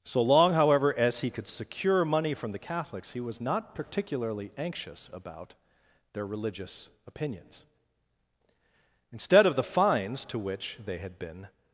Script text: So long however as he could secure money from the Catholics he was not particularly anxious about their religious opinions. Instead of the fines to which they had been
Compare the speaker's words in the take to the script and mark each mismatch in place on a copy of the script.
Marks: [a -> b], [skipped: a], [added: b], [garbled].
So long however as he could secure money from the Catholics he was not particularly anxious about their religious opinions. Instead of the fines to which they had been